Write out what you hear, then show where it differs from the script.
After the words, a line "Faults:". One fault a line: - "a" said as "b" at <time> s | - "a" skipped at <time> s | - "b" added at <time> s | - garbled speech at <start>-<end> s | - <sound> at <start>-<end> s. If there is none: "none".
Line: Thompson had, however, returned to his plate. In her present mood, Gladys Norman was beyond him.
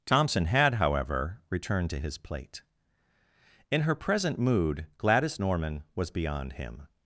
Thompson had, however, returned to his plate. In her present mood, Gladys Norman was beyond him.
Faults:
none